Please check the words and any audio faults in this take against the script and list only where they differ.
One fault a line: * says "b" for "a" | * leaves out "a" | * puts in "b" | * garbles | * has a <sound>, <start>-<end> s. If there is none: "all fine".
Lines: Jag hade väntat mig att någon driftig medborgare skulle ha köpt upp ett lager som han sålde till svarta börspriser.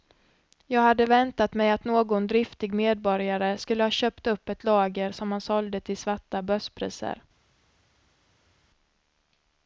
all fine